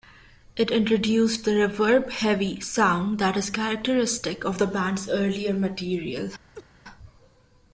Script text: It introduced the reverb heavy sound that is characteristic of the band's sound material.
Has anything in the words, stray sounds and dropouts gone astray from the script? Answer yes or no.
yes